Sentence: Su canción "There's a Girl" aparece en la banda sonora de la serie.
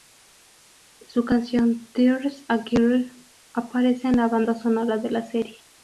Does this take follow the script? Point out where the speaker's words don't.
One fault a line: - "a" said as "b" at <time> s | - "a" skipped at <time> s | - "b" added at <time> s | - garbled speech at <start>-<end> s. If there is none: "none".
none